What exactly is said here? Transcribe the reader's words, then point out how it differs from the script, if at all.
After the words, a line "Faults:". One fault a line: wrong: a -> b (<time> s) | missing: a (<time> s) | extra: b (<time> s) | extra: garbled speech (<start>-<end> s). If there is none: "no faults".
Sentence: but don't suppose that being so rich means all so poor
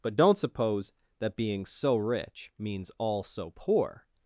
but don't suppose that being so rich means all so poor
Faults:
no faults